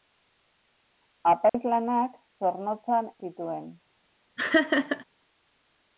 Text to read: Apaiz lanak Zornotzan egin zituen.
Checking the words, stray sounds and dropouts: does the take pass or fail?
fail